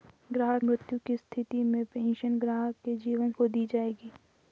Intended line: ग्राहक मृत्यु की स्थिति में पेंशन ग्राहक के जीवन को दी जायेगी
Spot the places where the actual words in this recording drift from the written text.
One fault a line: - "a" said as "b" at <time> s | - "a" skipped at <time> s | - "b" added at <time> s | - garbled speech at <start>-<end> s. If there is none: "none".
none